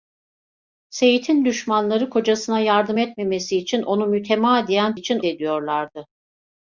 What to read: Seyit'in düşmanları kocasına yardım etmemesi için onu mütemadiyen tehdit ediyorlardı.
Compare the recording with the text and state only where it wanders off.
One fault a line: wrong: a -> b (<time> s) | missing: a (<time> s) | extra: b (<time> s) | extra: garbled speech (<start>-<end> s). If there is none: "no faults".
wrong: tehdit -> için (4.9 s)